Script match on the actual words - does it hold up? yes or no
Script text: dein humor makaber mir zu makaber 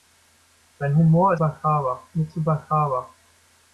yes